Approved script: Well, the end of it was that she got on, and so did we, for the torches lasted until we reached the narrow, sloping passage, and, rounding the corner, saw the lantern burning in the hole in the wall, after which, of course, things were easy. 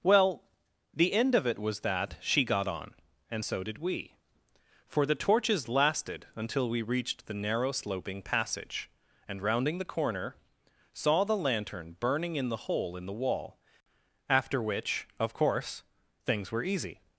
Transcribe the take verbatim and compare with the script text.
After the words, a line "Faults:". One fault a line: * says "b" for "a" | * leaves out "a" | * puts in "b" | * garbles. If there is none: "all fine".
Well, the end of it was that she got on, and so did we, for the torches lasted until we reached the narrow, sloping passage, and, rounding the corner, saw the lantern burning in the hole in the wall, after which, of course, things were easy.
Faults:
all fine